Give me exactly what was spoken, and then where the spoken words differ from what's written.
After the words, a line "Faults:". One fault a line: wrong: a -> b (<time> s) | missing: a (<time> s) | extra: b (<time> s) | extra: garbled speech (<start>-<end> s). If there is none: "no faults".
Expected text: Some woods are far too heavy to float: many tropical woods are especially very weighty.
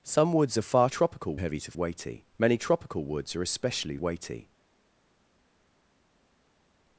Some woods are far tropical heavy to weighty: many tropical woods are especially weighty.
Faults:
wrong: too -> tropical (0.9 s)
wrong: float -> weighty (1.7 s)
missing: very (4.0 s)